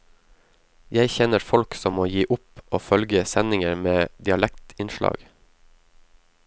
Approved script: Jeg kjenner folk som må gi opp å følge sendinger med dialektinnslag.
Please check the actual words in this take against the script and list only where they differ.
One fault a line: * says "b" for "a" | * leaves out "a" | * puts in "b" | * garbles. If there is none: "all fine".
all fine